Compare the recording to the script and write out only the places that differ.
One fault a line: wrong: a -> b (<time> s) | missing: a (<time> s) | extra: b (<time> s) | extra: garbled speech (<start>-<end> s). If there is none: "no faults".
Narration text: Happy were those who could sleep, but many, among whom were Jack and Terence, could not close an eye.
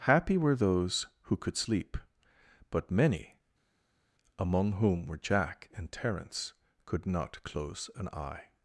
no faults